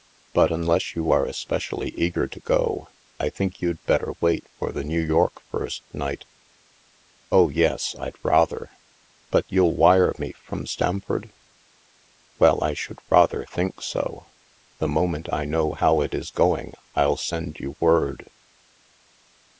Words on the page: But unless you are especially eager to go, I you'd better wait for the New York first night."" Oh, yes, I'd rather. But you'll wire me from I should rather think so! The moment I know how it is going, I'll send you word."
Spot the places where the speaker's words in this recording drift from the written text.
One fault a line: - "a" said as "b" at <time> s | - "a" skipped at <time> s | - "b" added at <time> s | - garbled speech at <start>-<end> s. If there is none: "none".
- "think" added at 3.3 s
- "Stamford Well" added at 10.7 s